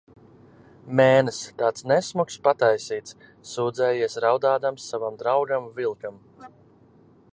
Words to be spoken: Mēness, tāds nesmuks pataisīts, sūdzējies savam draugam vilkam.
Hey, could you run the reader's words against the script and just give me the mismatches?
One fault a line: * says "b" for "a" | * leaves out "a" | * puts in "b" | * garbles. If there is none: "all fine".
* puts in "raudādams"